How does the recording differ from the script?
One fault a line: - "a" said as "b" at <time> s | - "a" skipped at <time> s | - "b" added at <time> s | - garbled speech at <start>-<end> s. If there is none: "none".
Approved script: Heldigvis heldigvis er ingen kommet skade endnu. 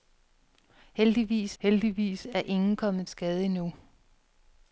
none